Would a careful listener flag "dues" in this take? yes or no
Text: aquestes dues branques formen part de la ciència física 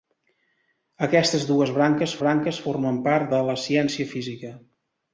no